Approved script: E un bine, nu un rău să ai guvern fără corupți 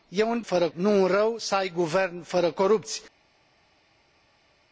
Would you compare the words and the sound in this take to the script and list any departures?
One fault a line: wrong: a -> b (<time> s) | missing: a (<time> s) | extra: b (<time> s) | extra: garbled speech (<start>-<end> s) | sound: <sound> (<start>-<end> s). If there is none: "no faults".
wrong: bine -> fără (0.4 s)